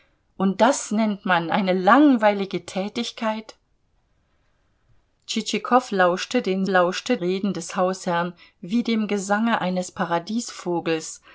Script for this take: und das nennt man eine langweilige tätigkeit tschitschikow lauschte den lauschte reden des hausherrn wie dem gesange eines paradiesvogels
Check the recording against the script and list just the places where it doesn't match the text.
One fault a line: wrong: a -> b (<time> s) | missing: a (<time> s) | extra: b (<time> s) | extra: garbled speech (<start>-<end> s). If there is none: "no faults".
no faults